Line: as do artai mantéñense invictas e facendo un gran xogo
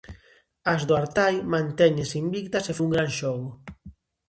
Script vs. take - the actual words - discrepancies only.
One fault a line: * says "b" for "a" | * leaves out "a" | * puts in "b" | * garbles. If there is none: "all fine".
* leaves out "facendo"